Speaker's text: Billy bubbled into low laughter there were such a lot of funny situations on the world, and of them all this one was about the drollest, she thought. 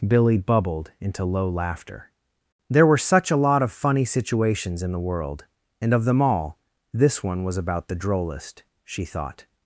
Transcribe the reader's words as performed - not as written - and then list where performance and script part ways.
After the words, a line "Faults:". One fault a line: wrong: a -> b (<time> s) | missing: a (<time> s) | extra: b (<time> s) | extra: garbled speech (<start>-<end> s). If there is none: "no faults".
Billy bubbled into low laughter there were such a lot of funny situations in the world, and of them all this one was about the drollest, she thought.
Faults:
wrong: on -> in (4.8 s)